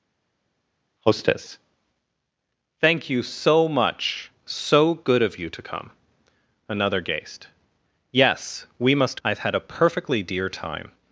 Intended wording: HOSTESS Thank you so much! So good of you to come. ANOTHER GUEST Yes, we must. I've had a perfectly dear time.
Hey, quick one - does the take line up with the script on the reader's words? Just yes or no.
yes